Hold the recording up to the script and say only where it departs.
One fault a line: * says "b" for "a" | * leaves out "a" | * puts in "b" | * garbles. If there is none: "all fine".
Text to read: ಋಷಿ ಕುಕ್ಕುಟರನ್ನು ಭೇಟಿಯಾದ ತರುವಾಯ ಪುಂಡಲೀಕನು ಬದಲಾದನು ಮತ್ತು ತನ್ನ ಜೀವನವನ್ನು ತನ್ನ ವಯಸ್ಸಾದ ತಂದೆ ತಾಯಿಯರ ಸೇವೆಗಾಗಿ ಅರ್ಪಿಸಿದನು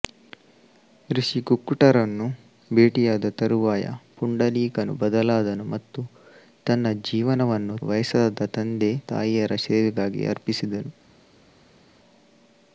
* leaves out "ತನ್ನ"